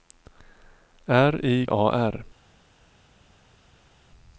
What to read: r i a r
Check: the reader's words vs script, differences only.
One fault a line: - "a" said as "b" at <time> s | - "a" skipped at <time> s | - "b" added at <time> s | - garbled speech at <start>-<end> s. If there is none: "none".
none